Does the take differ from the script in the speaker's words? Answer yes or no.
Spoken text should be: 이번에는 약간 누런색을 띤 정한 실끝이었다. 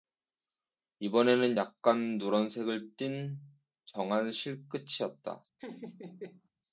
no